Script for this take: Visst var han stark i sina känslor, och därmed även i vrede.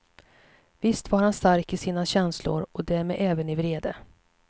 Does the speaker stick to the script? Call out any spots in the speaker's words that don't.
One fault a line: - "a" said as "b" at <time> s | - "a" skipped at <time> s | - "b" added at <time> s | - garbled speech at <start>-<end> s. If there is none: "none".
none